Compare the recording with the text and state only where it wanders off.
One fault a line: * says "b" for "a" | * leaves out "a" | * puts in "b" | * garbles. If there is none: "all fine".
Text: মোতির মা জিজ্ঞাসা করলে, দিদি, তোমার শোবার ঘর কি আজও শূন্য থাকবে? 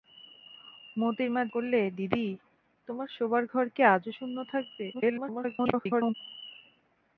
* leaves out "জিজ্ঞাসা"
* garbles